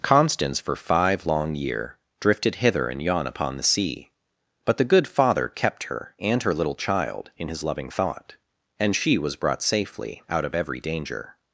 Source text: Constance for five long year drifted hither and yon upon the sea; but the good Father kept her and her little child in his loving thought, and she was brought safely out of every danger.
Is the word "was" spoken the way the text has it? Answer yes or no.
yes